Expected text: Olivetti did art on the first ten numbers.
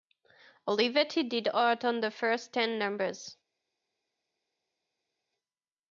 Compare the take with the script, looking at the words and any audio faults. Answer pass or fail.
pass